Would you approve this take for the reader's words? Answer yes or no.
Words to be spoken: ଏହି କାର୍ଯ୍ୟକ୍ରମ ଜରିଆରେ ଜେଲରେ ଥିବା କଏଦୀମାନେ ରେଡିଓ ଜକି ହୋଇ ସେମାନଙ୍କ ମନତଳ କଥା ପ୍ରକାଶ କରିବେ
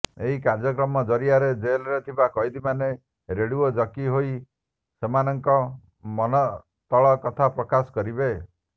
yes